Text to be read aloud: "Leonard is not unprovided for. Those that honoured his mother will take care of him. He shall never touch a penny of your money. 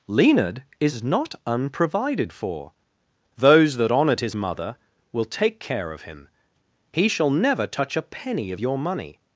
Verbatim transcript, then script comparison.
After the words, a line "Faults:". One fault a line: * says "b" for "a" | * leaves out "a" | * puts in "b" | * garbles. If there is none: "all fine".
"Leonard is not unprovided for. Those that honoured his mother will take care of him. He shall never touch a penny of your money.
Faults:
all fine